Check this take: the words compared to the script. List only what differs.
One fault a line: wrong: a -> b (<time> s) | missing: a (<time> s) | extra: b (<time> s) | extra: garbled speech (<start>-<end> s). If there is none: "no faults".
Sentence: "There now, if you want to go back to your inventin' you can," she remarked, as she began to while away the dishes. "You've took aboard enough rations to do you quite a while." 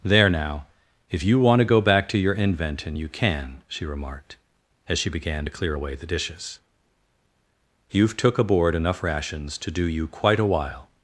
wrong: while -> clear (5.5 s)